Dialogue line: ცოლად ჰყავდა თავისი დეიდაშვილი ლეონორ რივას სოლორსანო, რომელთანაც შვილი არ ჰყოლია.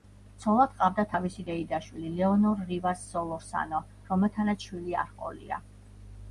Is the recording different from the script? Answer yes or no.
no